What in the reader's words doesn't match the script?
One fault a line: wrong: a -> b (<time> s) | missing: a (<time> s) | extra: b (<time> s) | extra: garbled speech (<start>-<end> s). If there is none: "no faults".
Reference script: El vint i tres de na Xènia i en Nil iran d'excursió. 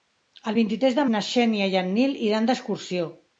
no faults